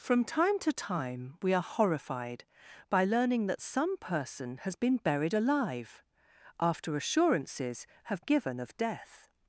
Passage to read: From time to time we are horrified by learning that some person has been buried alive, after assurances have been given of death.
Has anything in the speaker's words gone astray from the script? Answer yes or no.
yes